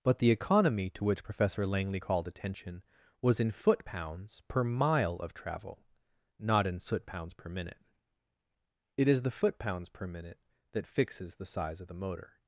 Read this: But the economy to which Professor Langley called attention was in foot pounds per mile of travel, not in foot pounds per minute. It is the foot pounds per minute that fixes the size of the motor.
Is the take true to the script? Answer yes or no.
no